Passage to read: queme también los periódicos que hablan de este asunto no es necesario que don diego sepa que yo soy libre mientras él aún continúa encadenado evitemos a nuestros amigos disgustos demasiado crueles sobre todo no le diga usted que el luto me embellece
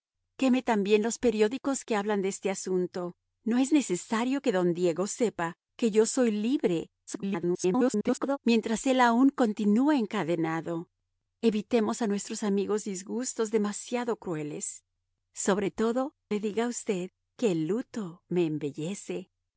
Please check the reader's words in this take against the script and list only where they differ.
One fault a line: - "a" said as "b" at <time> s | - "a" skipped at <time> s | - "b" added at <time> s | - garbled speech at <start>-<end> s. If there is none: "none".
- garbled speech at 7.1-8.4 s
- "no" skipped at 16.1 s